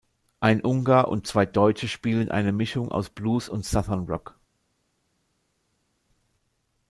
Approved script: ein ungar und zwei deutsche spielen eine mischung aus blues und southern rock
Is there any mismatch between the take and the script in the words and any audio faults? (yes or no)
no